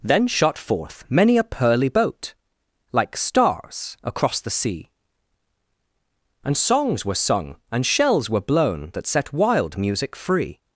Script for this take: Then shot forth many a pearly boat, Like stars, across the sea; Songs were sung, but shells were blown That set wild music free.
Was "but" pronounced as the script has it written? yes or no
no